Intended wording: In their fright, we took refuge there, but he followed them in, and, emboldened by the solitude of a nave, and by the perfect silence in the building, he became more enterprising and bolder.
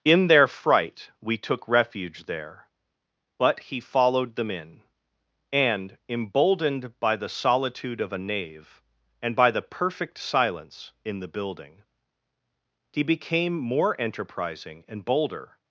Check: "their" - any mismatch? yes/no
no